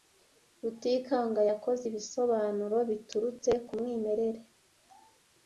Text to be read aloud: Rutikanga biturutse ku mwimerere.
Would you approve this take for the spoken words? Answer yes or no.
no